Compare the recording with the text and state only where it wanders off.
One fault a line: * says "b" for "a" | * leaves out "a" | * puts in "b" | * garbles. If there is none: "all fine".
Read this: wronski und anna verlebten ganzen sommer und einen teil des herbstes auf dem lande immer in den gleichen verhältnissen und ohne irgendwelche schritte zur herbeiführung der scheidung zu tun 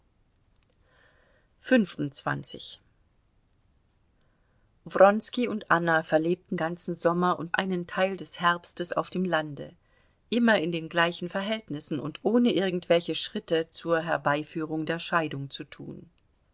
all fine